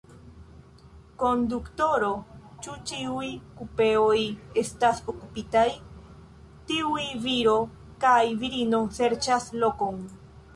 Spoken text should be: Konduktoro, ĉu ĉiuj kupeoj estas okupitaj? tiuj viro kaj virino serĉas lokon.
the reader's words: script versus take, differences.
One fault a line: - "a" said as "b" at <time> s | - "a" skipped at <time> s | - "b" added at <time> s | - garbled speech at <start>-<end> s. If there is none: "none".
none